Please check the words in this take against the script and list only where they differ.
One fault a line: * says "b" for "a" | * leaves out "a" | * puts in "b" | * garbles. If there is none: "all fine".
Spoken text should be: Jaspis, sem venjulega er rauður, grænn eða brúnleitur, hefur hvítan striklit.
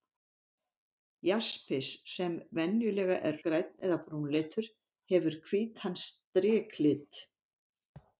* leaves out "rauður"